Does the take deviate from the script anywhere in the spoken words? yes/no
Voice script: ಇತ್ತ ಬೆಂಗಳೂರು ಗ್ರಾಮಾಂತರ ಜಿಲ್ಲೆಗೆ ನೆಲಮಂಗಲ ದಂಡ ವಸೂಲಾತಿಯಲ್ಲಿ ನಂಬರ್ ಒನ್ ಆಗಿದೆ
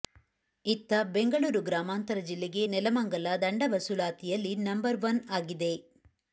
no